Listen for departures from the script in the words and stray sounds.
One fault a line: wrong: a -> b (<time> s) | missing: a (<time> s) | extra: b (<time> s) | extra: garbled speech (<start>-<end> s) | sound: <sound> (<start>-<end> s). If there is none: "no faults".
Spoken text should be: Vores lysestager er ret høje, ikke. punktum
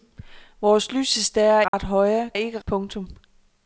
sound: dropout (1.7-1.7 s)